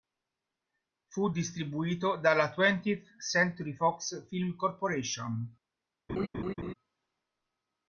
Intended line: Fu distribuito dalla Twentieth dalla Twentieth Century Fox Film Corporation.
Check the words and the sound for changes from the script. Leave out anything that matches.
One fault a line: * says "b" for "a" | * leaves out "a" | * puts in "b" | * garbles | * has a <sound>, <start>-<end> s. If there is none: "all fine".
* leaves out "dalla Twentieth"
* has a laugh, 6.1-6.7 s